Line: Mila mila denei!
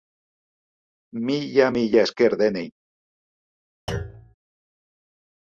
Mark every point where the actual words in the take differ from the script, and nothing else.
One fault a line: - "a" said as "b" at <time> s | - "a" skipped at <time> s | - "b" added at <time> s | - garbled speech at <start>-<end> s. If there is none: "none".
- "esker" added at 2.1 s